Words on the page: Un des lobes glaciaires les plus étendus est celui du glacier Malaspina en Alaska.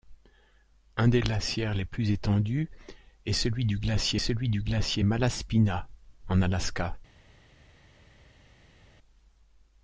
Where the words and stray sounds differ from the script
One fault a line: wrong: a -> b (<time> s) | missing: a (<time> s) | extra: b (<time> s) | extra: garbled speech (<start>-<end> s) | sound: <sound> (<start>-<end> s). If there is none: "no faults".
missing: lobes (1.2 s)
extra: celui du glacier (4.2 s)